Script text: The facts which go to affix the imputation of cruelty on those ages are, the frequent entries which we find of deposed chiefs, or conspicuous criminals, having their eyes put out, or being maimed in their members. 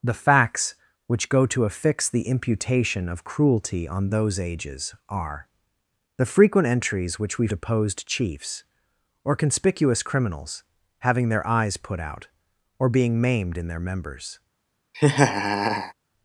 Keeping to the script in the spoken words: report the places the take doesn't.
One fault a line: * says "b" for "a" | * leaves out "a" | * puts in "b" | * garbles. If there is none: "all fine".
* leaves out "find of"